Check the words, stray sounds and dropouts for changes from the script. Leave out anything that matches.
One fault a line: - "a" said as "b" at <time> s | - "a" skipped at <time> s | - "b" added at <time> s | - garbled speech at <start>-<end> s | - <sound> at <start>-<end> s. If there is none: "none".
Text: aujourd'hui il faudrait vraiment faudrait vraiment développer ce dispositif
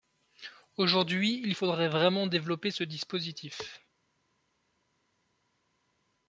- "faudrait vraiment" skipped at 2.3 s